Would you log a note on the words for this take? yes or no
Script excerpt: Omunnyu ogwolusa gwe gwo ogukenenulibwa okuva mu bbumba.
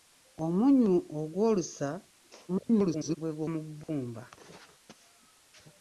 yes